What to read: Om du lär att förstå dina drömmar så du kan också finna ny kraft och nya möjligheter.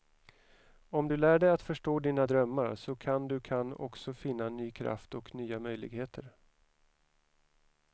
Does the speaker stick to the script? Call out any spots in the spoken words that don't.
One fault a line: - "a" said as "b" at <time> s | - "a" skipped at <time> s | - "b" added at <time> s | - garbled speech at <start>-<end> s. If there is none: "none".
- "dig" added at 1.4 s
- "kan" added at 3.0 s